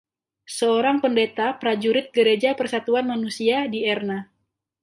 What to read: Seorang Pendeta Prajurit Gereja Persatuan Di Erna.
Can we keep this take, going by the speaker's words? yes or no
no